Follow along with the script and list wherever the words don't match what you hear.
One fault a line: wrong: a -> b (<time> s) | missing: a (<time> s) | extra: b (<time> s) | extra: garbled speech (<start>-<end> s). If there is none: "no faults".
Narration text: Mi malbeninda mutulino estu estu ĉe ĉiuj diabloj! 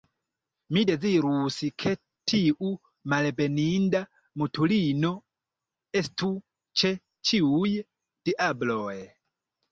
extra: dezirus ke tiu (0.9 s)
missing: estu (6.3 s)